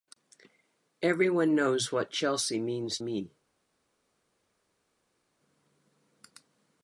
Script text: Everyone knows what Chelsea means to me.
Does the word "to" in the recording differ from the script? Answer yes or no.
yes